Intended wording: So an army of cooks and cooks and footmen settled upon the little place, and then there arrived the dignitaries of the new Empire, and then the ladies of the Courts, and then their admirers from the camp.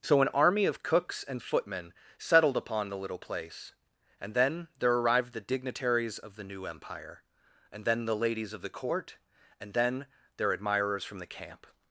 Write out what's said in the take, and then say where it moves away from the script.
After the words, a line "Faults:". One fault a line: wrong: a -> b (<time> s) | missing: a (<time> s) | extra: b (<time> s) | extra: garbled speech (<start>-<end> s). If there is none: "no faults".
So an army of cooks and footmen settled upon the little place, and then there arrived the dignitaries of the new Empire, and then the ladies of the Court, and then their admirers from the camp.
Faults:
missing: cooks and (1.4 s)
wrong: Courts -> Court (8.7 s)